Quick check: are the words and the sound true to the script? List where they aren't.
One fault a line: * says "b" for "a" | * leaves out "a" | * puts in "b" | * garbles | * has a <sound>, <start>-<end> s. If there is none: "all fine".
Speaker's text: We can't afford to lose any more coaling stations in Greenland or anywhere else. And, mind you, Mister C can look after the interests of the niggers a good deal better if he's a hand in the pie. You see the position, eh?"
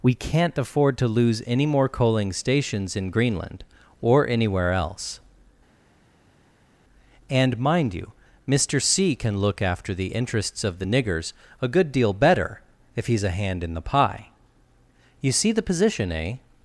all fine